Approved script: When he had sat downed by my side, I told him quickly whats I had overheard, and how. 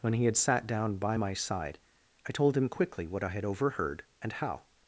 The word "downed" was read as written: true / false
false